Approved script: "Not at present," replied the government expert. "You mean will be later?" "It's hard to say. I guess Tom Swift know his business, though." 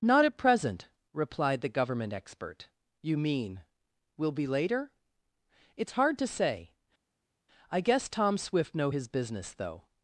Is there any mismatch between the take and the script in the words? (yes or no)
no